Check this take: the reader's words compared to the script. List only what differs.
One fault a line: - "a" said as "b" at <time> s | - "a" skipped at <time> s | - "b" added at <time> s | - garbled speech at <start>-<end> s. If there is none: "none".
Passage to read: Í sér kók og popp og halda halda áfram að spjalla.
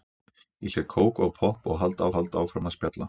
none